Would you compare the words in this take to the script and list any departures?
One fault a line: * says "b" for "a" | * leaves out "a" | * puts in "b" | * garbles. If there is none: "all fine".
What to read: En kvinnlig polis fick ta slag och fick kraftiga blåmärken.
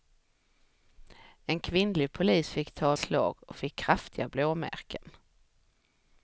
all fine